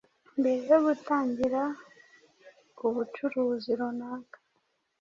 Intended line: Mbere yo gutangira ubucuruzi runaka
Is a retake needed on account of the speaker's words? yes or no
no